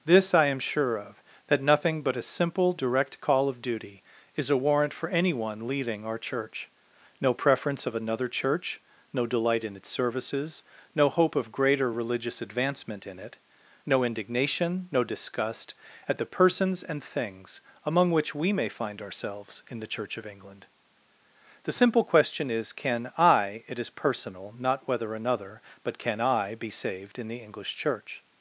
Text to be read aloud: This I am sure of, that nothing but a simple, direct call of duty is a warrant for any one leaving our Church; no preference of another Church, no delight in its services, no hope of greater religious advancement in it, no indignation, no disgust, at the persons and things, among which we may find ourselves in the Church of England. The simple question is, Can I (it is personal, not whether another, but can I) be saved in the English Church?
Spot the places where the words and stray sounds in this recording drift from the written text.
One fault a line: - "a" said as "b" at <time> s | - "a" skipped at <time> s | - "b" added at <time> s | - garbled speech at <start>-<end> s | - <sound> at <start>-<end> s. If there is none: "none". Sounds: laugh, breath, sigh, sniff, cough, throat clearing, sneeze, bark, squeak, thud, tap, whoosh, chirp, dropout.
- "any one leaving" said as "anyone leading" at 5.1 s